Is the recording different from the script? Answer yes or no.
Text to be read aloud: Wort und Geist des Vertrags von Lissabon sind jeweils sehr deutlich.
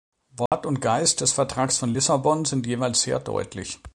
no